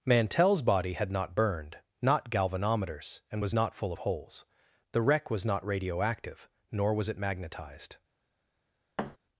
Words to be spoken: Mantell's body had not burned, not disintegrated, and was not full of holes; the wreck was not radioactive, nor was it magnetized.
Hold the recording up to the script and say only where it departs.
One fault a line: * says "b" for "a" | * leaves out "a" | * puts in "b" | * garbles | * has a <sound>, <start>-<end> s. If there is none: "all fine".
* says "galvanometers" for "disintegrated"
* has a thud, 9.0-9.2 s